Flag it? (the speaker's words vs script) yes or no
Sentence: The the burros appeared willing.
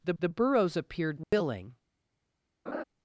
no